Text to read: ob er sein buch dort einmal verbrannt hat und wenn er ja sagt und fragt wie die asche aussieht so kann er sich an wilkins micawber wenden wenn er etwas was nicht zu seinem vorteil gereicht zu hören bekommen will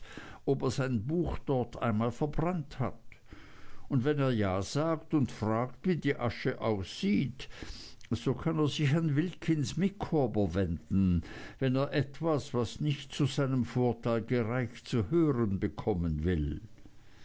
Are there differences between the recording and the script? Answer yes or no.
no